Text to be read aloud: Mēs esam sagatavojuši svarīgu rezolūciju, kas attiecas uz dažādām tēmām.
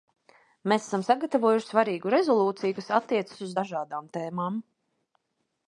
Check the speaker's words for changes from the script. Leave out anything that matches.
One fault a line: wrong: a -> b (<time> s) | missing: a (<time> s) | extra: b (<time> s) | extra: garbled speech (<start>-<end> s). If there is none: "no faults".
no faults